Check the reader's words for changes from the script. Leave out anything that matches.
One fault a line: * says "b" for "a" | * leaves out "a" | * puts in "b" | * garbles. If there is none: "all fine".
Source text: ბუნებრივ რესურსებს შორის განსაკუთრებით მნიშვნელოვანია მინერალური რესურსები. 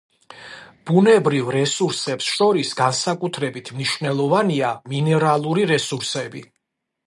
all fine